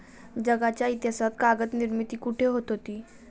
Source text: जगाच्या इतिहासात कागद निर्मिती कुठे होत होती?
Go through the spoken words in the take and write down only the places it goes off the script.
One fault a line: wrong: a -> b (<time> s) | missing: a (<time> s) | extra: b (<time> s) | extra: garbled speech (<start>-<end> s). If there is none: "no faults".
no faults